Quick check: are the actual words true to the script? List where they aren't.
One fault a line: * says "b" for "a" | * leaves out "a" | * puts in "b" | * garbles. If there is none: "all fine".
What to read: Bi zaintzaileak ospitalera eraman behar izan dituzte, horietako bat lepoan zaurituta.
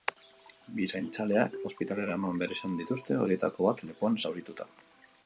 all fine